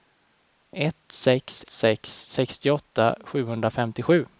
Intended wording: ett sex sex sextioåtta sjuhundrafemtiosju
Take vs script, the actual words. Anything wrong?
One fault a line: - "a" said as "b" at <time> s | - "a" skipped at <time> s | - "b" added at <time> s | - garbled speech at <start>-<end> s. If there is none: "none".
none